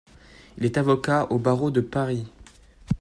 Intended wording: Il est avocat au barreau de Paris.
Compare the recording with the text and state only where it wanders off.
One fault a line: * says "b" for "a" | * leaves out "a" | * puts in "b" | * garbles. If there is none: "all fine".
all fine